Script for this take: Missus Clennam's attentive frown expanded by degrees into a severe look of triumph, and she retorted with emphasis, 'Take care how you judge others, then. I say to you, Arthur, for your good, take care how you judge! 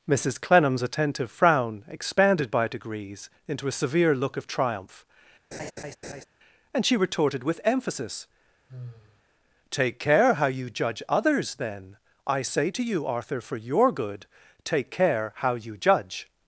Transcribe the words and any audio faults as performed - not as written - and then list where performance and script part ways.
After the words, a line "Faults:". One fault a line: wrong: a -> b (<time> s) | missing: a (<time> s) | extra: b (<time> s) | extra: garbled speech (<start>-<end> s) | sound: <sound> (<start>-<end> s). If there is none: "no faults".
Missus Clennam's attentive frown expanded by degrees into a severe look of triumph, and she retorted with emphasis, 'Take care how you judge others, then. I say to you, Arthur, for your good, take care how you judge!
Faults:
sound: laugh (5.5-6.2 s)
sound: sigh (8.7-9.2 s)